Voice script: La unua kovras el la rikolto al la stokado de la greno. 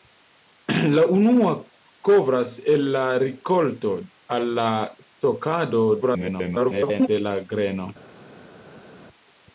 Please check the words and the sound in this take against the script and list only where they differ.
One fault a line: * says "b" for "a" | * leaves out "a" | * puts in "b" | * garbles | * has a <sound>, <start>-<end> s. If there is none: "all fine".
* garbles